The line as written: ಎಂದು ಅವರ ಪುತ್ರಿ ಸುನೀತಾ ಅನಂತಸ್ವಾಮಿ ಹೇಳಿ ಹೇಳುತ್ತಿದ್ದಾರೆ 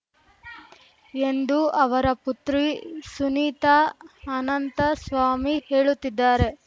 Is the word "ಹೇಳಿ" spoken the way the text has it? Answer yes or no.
no